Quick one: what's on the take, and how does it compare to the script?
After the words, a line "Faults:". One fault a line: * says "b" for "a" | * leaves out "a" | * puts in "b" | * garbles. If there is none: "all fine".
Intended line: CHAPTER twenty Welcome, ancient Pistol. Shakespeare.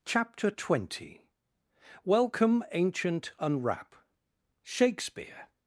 CHAPTER twenty Welcome, ancient Unwrap. Shakespeare.
Faults:
* says "Unwrap" for "Pistol"